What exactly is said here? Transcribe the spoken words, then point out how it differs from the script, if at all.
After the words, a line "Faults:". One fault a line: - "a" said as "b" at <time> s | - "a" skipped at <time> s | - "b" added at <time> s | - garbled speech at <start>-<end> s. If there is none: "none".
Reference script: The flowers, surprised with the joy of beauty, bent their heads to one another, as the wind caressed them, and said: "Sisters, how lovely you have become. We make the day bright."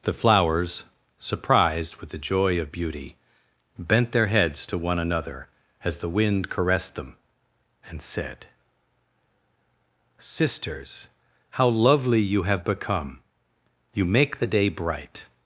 The flowers, surprised with the joy of beauty, bent their heads to one another, as the wind caressed them, and said: "Sisters, how lovely you have become. You make the day bright."
Faults:
- "We" said as "You" at 13.9 s